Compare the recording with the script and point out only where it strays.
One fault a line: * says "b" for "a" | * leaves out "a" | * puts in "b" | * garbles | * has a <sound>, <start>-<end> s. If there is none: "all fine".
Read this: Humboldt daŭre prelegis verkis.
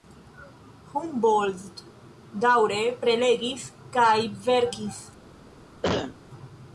* puts in "kaj"
* has a cough, 5.8-6.2 s